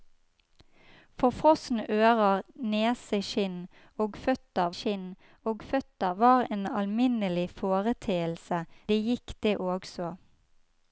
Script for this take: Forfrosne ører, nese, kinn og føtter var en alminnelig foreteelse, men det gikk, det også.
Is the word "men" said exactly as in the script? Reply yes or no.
no